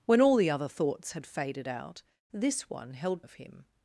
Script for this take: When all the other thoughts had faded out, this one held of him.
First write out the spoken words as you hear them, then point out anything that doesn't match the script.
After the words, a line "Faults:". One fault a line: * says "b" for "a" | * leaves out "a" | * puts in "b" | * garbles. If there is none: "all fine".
When all the other thoughts had faded out, this one held of him.
Faults:
all fine